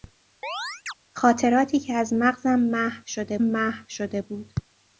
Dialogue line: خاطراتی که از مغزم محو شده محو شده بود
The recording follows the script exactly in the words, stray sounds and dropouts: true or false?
false